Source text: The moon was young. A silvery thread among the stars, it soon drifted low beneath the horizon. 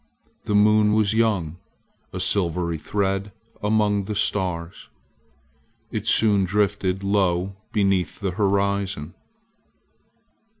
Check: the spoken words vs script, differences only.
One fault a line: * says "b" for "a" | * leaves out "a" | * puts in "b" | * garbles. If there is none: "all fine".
all fine